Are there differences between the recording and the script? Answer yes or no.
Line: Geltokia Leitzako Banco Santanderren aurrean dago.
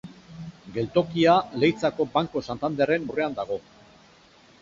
no